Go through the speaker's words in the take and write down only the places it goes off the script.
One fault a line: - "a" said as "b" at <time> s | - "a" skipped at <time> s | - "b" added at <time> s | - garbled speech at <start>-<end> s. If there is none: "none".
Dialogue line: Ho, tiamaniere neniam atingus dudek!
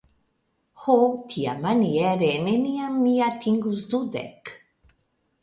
- "mi" added at 3.0 s